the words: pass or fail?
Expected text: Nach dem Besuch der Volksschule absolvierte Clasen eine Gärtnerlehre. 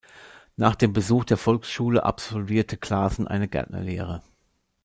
pass